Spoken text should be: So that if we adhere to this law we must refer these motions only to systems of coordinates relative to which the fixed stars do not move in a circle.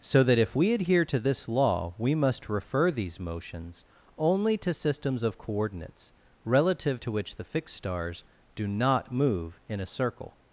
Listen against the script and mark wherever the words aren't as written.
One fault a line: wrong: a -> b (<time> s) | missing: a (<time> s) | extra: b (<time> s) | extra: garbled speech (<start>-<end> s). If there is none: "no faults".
no faults